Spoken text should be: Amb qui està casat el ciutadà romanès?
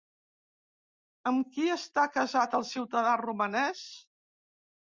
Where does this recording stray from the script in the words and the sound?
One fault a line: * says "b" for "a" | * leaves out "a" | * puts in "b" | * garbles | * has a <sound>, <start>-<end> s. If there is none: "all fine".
all fine